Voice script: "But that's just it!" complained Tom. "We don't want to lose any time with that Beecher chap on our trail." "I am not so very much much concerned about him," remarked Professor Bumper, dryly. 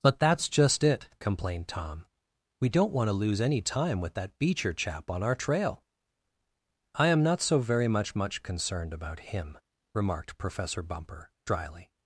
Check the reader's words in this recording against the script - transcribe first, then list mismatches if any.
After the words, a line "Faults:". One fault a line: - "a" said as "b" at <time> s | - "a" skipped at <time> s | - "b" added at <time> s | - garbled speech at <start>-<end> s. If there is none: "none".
"But that's just it!" complained Tom. "We don't want to lose any time with that Beecher chap on our trail." "I am not so very much much concerned about him," remarked Professor Bumper, dryly.
Faults:
none